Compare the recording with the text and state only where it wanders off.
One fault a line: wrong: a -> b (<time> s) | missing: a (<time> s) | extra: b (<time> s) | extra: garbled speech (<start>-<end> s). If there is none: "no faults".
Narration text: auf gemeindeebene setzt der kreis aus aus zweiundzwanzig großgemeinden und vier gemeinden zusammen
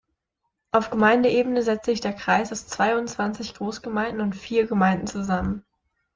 extra: sich (1.9 s)
missing: aus (2.7 s)